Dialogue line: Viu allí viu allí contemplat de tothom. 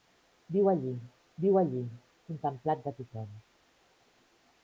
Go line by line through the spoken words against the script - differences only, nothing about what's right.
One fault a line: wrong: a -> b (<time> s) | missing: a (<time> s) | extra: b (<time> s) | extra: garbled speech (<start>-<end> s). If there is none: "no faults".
no faults